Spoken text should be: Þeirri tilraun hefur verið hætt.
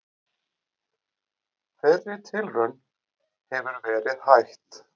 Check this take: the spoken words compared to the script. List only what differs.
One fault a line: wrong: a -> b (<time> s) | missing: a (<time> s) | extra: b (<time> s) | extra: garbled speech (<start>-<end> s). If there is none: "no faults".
no faults